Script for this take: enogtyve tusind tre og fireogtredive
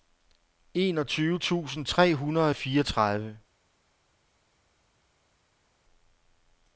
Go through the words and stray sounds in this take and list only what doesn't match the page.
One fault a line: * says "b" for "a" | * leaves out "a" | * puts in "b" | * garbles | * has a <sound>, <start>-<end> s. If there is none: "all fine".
* puts in "hundrede"